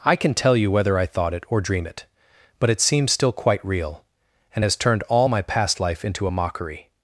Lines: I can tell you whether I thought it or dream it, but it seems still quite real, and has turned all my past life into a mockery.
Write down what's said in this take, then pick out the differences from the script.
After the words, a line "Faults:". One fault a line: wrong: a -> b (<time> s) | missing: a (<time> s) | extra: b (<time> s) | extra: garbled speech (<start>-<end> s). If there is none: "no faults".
I can tell you whether I thought it or dream it, but it seems still quite real, and has turned all my past life into a mockery.
Faults:
no faults